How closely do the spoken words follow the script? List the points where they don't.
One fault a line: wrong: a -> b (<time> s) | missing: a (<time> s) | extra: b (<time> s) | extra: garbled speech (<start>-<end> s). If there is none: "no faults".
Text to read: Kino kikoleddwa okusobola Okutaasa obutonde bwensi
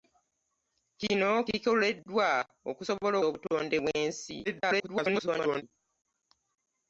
missing: Okutaasa (3.1 s)
extra: garbled speech (4.4-5.6 s)